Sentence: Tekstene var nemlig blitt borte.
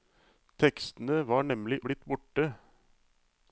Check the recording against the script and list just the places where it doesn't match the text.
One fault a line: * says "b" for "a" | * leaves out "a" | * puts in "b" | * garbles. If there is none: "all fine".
all fine